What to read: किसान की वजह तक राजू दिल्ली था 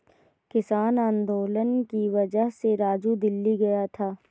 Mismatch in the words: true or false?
true